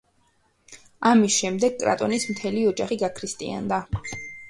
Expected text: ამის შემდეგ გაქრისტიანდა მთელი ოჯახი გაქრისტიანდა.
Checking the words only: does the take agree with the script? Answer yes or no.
no